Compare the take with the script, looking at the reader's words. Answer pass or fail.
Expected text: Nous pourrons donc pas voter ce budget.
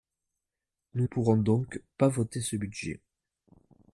pass